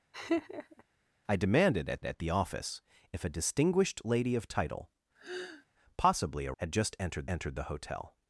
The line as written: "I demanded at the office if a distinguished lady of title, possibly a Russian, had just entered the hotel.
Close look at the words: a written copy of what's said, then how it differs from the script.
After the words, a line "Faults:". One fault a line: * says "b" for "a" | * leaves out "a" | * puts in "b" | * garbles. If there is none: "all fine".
"I demanded at at the office if a distinguished lady of title, possibly a Had just entered entered the hotel.
Faults:
* puts in "at"
* leaves out "Russian"
* puts in "entered"